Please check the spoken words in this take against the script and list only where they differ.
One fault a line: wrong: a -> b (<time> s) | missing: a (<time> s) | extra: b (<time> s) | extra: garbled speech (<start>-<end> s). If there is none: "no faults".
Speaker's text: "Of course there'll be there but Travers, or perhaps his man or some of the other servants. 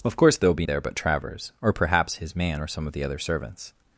no faults